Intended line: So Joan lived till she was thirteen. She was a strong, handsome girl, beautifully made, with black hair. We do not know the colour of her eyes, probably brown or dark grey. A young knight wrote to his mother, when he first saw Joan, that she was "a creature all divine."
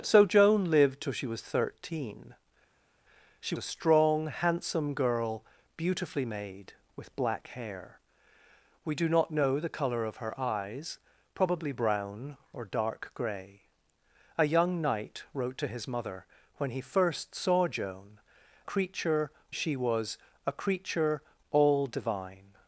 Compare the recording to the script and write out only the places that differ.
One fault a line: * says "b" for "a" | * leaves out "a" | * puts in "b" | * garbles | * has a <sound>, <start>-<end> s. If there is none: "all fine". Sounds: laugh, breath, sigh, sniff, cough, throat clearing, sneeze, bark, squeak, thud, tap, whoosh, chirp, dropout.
* leaves out "was"
* says "creature" for "that"